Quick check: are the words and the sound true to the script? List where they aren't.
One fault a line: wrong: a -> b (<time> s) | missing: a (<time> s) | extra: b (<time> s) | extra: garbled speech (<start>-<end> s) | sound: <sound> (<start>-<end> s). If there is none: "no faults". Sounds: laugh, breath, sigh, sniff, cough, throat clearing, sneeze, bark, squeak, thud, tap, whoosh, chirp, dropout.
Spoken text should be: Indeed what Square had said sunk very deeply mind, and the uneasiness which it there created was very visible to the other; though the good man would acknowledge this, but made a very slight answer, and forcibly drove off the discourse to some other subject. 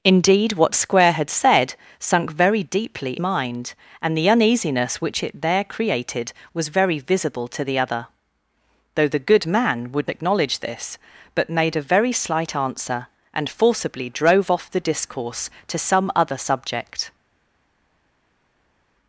no faults